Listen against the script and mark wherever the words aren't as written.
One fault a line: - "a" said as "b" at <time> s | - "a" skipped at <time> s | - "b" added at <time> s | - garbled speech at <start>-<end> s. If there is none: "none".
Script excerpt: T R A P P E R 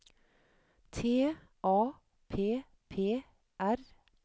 - "R" skipped at 1.4 s
- "E" skipped at 3.2 s